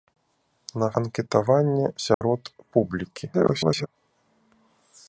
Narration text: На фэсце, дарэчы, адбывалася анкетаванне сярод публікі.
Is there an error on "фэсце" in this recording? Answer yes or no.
yes